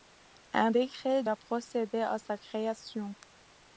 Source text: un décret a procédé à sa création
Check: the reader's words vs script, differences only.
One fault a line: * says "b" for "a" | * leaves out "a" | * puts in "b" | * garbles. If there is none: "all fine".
all fine